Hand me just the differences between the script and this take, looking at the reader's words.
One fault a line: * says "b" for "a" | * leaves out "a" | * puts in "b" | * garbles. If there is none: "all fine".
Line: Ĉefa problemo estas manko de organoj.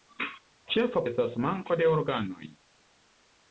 * leaves out "problemo"